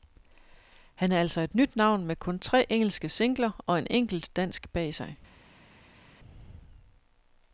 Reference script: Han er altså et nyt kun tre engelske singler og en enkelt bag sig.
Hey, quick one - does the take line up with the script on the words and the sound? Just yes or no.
no